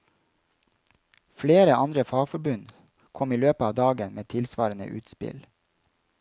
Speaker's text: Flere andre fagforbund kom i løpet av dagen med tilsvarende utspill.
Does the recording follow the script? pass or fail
pass